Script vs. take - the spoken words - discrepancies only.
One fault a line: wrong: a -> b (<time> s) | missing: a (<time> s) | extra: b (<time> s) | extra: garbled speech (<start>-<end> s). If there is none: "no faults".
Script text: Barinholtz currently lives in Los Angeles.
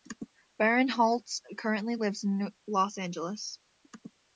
no faults